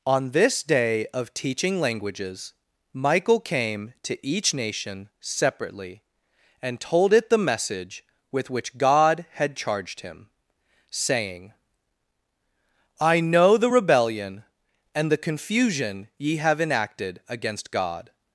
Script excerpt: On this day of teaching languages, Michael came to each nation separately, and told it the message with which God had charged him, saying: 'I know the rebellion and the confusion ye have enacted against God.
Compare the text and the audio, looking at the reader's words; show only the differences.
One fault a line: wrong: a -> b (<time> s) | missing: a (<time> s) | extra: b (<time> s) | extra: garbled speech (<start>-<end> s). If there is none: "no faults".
no faults